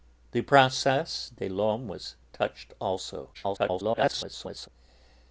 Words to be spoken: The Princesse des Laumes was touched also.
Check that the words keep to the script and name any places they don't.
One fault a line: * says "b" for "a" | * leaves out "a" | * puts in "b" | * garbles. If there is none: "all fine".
* garbles